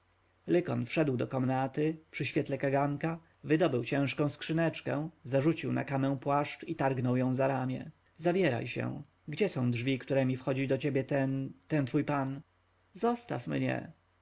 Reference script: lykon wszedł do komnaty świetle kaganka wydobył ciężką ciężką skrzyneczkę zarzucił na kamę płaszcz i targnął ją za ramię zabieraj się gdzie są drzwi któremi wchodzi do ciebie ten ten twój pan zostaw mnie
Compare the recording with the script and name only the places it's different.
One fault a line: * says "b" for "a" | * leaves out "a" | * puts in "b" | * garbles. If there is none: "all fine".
* puts in "przy"
* leaves out "ciężką"